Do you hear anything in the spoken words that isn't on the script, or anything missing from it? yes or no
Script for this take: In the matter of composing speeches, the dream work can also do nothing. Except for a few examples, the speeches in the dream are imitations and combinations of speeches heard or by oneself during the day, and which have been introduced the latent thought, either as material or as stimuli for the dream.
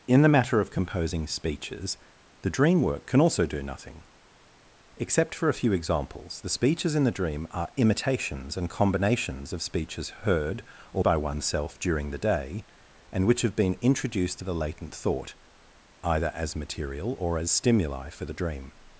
no